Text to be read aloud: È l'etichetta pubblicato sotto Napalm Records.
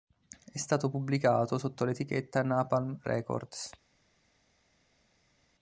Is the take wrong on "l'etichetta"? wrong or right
wrong